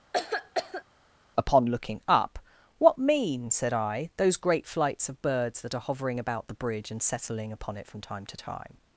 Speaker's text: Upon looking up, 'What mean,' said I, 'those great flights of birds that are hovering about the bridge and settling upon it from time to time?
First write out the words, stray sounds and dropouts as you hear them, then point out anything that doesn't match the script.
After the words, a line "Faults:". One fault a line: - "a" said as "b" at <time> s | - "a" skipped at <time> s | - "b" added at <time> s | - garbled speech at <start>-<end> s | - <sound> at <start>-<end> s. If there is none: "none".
Upon looking up, 'What mean,' said I, 'those great flights of birds that are hovering about the bridge and settling upon it from time to time?
Faults:
- cough at 0.1-0.8 s